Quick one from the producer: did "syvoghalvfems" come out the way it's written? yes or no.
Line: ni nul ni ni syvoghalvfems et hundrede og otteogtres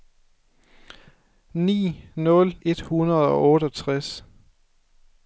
no